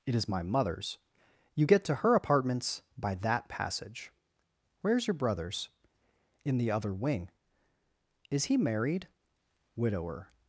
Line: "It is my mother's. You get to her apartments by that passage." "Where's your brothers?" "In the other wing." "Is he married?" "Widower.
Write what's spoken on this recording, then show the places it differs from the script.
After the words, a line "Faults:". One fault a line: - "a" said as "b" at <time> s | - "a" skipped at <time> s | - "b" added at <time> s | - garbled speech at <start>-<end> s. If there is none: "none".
"It is my mother's. You get to her apartments by that passage." "Where's your brothers?" "In the other wing." "Is he married?" "Widower.
Faults:
none